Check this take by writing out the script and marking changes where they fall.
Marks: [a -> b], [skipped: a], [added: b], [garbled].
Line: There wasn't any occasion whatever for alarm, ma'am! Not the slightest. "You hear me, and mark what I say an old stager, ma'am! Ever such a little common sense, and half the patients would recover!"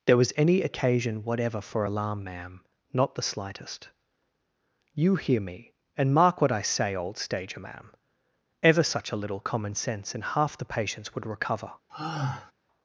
There [wasn't -> was] any occasion whatever for alarm, ma'am! Not the slightest. "You hear me, and mark what I say [skipped: an] old stager, ma'am! Ever such a little common sense, and half the patients would recover!"